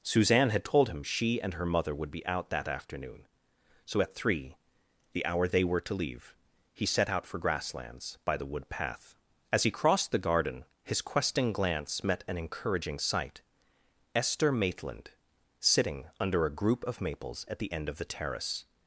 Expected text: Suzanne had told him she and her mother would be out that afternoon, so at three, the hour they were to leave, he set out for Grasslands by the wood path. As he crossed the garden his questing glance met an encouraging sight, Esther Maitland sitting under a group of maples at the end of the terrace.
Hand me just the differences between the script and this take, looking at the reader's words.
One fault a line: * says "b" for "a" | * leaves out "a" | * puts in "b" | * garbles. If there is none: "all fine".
all fine